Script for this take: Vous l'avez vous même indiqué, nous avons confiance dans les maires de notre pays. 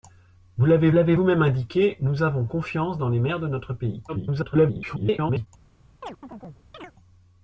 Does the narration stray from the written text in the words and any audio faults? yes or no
yes